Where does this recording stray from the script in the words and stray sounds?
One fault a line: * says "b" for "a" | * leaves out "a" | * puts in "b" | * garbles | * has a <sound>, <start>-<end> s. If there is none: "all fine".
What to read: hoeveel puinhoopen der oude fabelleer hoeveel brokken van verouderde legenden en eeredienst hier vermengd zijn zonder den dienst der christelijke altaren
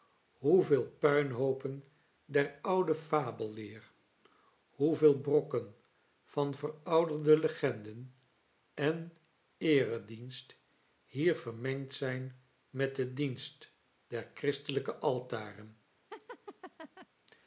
* says "met" for "zonder"
* has a laugh, 16.1-17.1 s